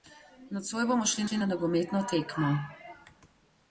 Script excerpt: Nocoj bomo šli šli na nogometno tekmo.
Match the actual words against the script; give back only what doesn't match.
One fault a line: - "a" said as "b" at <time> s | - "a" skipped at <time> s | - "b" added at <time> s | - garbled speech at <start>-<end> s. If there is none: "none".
none